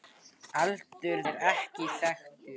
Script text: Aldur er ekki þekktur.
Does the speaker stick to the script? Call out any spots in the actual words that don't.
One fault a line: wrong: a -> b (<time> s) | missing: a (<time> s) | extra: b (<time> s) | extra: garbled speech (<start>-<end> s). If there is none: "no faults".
no faults